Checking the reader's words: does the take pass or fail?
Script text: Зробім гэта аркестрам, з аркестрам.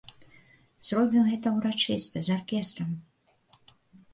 fail